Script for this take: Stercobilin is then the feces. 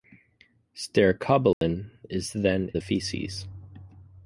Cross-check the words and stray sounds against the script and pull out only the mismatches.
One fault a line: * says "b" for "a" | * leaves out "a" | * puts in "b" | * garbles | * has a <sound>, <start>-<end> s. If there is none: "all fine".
* has a dropout, 1.5-1.6 s